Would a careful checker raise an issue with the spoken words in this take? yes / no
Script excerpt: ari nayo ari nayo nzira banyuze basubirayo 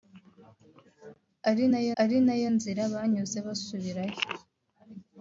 no